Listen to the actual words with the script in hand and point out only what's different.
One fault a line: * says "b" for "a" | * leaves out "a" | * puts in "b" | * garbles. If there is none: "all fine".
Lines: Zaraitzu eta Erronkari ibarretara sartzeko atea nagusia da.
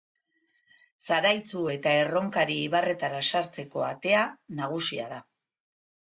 all fine